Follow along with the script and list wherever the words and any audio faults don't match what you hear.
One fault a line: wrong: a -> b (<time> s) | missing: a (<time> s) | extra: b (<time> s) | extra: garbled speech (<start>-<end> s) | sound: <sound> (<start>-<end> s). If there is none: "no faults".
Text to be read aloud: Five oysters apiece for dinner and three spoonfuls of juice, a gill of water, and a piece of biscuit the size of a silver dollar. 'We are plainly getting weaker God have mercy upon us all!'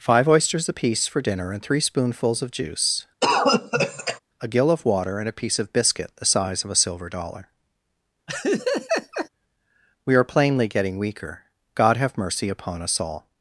sound: cough (3.2-4.2 s)
sound: laugh (8.3-9.3 s)